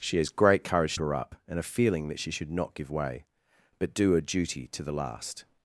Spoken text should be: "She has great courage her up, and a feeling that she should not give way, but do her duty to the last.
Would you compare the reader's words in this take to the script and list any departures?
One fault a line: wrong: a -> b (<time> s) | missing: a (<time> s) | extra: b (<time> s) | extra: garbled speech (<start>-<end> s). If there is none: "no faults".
no faults